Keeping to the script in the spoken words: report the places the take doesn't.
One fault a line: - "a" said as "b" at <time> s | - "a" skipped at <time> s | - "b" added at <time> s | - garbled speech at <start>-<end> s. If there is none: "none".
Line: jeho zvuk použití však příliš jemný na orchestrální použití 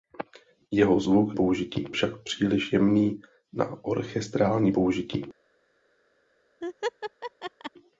none